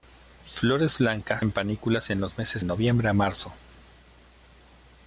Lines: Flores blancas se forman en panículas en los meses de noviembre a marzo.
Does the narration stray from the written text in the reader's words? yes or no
yes